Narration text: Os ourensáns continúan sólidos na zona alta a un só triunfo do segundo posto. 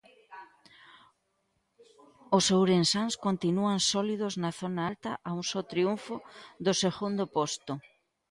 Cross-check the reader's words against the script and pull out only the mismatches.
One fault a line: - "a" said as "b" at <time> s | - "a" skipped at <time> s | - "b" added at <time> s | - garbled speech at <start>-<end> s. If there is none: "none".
none